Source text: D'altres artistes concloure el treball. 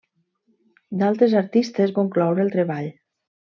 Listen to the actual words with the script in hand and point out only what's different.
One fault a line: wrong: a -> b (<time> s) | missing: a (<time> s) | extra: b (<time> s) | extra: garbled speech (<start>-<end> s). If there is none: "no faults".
no faults